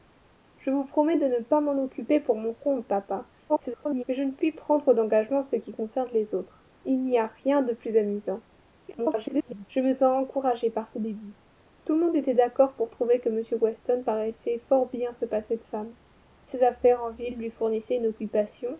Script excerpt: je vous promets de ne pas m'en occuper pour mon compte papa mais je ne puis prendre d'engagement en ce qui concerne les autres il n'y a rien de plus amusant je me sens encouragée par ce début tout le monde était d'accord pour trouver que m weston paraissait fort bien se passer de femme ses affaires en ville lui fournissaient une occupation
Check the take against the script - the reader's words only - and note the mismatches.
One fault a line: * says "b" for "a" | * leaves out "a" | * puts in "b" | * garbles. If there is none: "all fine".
* garbles
* garbles